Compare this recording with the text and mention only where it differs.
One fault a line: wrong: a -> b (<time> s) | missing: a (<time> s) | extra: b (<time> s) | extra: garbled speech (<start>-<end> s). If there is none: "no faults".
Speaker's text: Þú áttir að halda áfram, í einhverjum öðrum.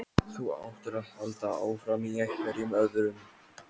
no faults